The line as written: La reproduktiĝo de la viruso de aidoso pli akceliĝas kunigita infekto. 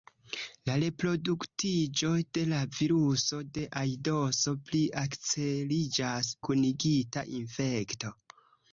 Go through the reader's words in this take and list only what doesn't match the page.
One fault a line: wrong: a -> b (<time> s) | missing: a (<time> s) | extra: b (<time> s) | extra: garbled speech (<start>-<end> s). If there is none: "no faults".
no faults